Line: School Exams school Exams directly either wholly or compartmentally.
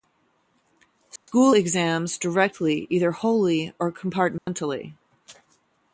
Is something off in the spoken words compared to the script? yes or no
yes